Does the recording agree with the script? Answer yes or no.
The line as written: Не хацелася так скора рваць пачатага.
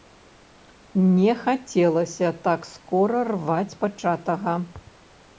yes